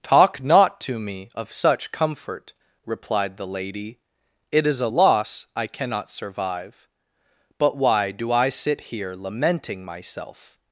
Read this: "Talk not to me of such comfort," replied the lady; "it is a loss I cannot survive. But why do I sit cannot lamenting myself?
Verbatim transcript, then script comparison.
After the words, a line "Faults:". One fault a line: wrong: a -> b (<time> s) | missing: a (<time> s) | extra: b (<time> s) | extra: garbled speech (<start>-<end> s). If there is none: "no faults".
"Talk not to me of such comfort," replied the lady; "it is a loss I cannot survive. But why do I sit here lamenting myself?
Faults:
wrong: cannot -> here (8.8 s)